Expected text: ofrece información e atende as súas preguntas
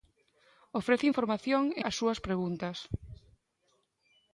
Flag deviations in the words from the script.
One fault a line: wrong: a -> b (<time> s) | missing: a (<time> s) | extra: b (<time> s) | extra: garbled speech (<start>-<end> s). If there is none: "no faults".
missing: atende (1.8 s)